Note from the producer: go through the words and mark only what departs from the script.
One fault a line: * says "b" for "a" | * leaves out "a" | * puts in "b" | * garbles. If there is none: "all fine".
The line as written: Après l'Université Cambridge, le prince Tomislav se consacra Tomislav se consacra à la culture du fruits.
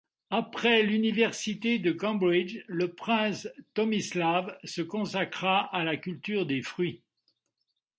* puts in "de"
* leaves out "Tomislav se consacra"
* says "des" for "du"